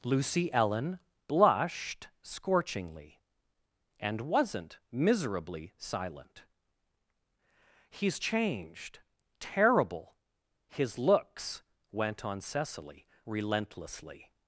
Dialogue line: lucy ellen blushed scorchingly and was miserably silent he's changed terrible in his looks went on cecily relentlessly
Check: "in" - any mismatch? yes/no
yes